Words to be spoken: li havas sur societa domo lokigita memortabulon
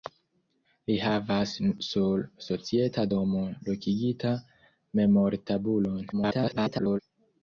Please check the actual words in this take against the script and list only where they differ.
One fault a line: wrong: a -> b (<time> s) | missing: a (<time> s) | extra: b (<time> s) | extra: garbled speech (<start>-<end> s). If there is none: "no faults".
extra: garbled speech (6.1-7.0 s)